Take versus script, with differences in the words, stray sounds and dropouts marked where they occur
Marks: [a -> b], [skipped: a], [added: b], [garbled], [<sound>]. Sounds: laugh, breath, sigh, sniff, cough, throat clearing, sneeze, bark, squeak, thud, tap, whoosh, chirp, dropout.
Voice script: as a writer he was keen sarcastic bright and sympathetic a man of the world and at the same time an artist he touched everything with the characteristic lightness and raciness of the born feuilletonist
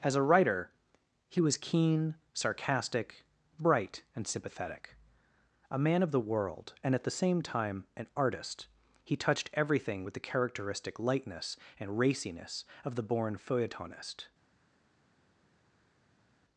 as a writer he was keen sarcastic bright and sympathetic a man of the world and at the same time an artist he touched everything with the characteristic lightness and raciness of the born feuilletonist